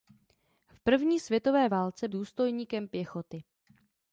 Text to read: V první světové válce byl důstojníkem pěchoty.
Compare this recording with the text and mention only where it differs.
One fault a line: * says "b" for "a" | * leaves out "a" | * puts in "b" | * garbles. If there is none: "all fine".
* leaves out "byl"